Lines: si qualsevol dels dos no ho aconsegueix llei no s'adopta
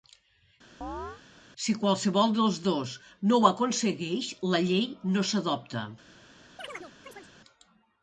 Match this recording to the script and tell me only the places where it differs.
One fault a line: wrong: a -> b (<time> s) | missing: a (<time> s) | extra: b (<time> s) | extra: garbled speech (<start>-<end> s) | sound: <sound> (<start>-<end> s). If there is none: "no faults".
sound: chirp (0.8-1.2 s)
extra: la (4.5 s)
sound: chirp (6.6-7.3 s)